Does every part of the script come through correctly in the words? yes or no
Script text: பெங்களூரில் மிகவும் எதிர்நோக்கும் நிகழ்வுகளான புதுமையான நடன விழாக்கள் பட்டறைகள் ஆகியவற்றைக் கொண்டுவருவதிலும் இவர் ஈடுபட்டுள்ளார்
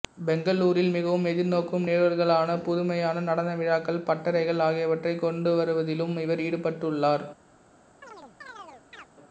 yes